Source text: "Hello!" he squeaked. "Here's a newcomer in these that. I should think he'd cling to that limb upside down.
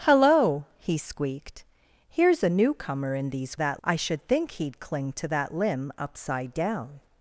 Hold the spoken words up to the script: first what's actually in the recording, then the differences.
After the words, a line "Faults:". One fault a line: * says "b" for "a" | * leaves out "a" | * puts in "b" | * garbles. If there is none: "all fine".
"Hello!" he squeaked. "Here's a newcomer in these that. I should think he'd cling to that limb upside down.
Faults:
all fine